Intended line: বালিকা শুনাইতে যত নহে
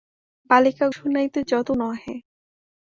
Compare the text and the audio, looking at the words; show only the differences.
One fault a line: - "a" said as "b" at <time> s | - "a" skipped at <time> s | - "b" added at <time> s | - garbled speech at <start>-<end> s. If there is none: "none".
none